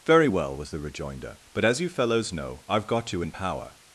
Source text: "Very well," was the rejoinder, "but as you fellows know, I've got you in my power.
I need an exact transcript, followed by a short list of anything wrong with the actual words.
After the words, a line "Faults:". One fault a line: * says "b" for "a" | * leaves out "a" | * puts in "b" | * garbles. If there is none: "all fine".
"Very well," was the rejoinder, "but as you fellows know, I've got you in power.
Faults:
* leaves out "my"